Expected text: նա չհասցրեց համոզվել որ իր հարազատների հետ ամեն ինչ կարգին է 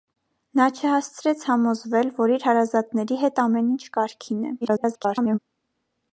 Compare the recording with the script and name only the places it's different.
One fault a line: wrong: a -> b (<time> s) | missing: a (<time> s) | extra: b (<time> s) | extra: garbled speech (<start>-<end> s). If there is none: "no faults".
extra: garbled speech (4.6-5.4 s)